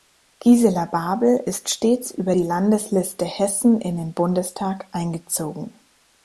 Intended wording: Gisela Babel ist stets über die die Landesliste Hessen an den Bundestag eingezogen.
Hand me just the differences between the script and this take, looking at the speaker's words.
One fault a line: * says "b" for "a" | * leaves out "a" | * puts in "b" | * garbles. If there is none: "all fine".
* leaves out "die"
* says "in" for "an"